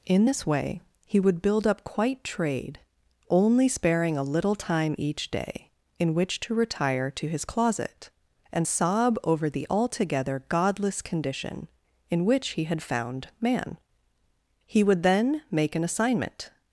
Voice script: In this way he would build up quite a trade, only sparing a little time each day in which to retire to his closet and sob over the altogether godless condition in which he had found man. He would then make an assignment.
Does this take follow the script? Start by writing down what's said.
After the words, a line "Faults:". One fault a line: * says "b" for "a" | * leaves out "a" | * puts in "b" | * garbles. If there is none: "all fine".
In this way he would build up quite trade, only sparing a little time each day in which to retire to his closet and sob over the altogether godless condition in which he had found man. He would then make an assignment.
Faults:
* leaves out "a"